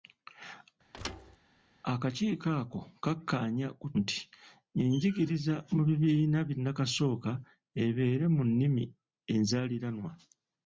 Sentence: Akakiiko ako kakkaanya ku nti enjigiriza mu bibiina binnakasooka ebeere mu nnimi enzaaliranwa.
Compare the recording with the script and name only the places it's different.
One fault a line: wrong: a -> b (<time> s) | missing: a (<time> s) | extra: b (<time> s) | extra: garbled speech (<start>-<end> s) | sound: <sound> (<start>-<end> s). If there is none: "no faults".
sound: thud (0.9-1.4 s)